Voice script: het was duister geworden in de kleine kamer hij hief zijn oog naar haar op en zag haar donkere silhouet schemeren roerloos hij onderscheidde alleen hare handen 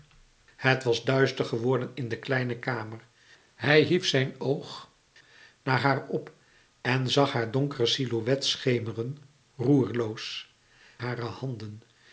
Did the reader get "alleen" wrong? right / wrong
wrong